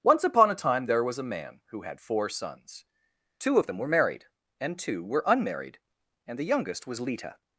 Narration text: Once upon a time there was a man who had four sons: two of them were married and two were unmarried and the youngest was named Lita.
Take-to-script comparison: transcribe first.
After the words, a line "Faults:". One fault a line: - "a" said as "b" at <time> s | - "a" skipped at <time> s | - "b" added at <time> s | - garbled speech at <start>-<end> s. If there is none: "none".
Once upon a time there was a man who had four sons: two of them were married and two were unmarried and the youngest was Lita.
Faults:
- "named" skipped at 7.0 s